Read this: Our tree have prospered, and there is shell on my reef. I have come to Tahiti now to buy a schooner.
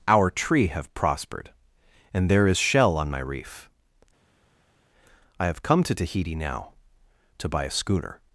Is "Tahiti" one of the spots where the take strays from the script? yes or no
no